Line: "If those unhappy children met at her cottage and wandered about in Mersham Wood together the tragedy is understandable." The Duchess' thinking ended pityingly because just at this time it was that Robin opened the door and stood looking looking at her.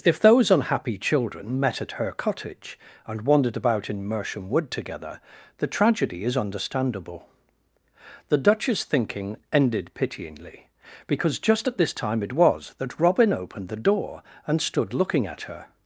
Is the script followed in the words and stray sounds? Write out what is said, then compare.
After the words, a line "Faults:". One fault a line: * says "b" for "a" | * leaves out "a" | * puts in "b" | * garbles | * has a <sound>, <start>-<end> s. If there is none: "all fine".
"If those unhappy children met at her cottage and wandered about in Mersham Wood together the tragedy is understandable." The Duchess' thinking ended pityingly because just at this time it was that Robin opened the door and stood looking at her.
Faults:
* leaves out "looking"